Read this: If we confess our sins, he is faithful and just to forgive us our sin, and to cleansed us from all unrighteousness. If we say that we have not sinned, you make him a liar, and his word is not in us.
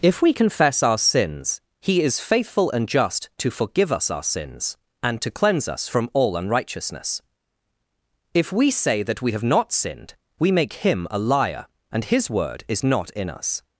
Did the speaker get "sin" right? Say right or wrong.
wrong